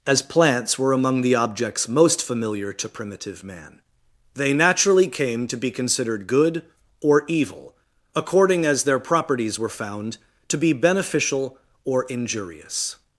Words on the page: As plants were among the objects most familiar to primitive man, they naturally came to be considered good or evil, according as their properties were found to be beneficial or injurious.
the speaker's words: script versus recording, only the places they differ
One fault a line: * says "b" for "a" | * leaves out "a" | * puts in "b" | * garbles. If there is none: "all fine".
all fine